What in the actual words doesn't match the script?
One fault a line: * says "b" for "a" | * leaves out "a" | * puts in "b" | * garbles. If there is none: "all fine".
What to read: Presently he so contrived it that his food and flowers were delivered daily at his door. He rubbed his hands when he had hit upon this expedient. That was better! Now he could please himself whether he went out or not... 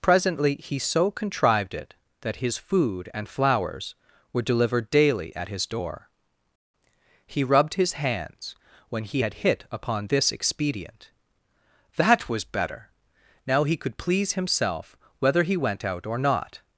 all fine